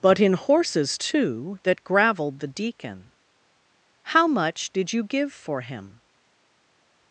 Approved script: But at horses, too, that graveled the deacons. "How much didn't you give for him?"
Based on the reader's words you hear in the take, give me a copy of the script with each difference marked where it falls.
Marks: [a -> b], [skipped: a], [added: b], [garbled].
But [at -> in] horses, too, that graveled the [deacons. -> deacon] "How much [didn't -> did] you give for him?"